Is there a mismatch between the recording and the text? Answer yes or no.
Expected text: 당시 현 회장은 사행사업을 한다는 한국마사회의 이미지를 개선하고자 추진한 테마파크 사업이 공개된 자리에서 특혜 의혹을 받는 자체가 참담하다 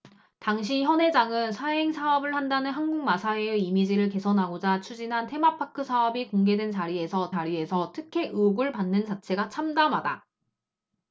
yes